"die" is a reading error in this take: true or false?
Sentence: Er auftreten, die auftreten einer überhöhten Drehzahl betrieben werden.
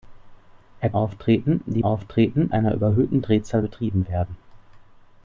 false